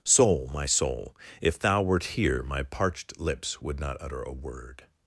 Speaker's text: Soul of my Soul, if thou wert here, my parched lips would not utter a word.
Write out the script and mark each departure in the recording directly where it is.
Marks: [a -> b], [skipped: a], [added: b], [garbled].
Soul [skipped: of] my Soul, if thou wert here, my parched lips would not utter a word.